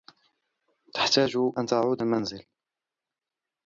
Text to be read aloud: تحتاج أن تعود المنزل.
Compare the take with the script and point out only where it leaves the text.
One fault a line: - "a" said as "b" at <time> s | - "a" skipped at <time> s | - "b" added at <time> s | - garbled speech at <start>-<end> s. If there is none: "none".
none